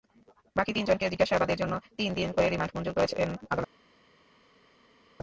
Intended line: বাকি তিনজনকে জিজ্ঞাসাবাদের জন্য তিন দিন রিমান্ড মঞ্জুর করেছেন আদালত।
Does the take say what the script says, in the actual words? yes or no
no